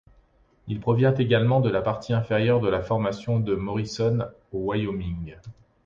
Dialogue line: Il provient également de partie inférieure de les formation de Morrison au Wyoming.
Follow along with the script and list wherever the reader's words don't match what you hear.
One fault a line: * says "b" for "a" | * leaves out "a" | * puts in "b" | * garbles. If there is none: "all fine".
* puts in "la"
* says "la" for "les"